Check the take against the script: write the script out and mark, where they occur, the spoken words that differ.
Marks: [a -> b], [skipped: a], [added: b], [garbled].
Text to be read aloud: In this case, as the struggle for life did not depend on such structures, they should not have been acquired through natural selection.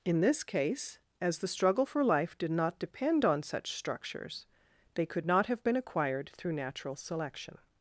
In this case, as the struggle for life did not depend on such structures, they [should -> could] not have been acquired through natural selection.